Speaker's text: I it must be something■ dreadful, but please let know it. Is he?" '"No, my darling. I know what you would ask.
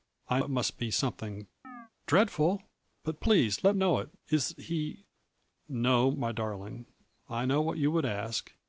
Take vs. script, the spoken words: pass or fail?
pass